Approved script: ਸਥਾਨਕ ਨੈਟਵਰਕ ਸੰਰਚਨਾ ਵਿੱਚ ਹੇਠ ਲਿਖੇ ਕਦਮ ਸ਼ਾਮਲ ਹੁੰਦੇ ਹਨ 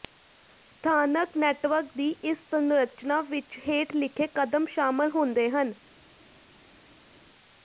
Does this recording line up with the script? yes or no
no